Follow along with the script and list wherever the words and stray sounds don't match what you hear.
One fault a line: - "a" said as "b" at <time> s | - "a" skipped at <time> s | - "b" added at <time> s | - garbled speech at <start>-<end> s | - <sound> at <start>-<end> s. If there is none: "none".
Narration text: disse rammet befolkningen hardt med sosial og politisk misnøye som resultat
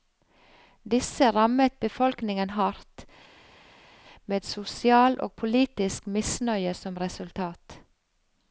none